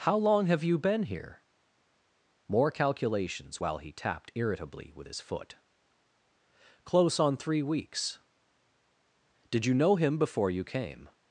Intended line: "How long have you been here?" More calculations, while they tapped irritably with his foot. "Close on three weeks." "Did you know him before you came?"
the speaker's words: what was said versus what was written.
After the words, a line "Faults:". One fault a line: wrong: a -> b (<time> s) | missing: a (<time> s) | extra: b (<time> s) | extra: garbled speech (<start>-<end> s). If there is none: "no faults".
"How long have you been here?" More calculations, while he tapped irritably with his foot. "Close on three weeks." "Did you know him before you came?"
Faults:
wrong: they -> he (3.8 s)